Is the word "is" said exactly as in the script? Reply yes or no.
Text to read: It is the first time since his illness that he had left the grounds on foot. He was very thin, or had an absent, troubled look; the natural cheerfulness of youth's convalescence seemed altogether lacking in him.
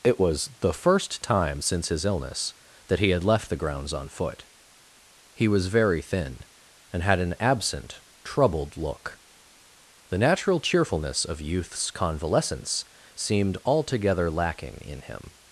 no